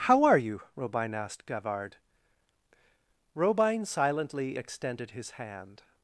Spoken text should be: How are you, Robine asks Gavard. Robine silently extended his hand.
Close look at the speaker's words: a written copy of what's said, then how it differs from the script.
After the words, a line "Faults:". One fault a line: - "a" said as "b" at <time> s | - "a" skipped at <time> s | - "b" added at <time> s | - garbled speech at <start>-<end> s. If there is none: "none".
How are you, Robine asked Gavard. Robine silently extended his hand.
Faults:
- "asks" said as "asked" at 1.2 s